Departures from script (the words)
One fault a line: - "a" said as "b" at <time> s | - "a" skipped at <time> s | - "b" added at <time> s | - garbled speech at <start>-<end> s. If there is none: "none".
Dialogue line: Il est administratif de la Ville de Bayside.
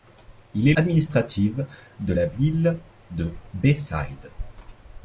none